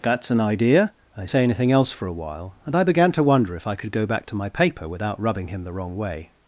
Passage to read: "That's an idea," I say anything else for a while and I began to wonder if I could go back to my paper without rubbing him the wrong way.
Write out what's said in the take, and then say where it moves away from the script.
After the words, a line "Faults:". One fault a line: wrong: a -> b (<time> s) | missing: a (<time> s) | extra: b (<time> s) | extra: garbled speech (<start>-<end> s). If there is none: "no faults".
"That's an idea," I say anything else for a while and I began to wonder if I could go back to my paper without rubbing him the wrong way.
Faults:
no faults